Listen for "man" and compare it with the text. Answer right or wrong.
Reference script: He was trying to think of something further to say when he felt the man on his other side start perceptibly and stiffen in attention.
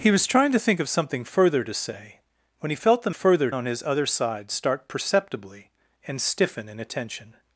wrong